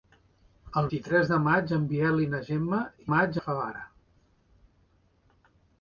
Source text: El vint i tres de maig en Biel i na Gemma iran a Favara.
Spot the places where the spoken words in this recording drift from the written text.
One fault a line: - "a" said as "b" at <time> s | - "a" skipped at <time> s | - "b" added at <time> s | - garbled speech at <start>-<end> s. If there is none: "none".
- "vint" skipped at 0.9 s
- "iran" said as "maig" at 3.1 s